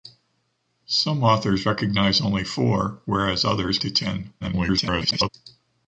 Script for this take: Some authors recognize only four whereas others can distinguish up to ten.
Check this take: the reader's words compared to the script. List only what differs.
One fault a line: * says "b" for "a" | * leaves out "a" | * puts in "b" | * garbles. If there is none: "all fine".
* leaves out "can distinguish up"
* garbles